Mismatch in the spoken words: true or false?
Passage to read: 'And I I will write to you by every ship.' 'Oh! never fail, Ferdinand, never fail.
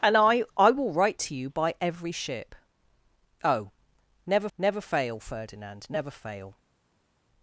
true